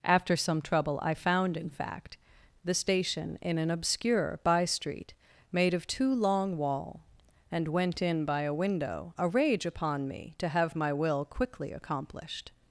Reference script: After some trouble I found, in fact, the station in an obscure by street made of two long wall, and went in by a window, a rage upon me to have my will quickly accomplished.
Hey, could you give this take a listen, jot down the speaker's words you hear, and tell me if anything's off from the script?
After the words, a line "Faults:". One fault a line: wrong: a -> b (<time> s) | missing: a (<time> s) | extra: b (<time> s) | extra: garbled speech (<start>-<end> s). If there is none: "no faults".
After some trouble I found, in fact, the station in an obscure by street made of two long wall, and went in by a window, a rage upon me to have my will quickly accomplished.
Faults:
no faults